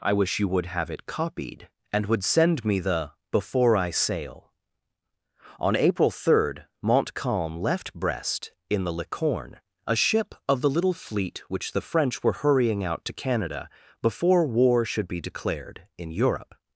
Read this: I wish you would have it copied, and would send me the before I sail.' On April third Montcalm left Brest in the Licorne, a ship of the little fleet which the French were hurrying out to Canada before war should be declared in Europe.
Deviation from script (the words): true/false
false